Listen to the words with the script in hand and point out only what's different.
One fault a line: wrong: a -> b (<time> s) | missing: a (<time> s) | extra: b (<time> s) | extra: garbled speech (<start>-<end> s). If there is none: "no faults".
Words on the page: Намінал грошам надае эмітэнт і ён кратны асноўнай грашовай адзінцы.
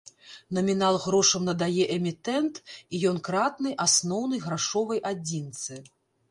no faults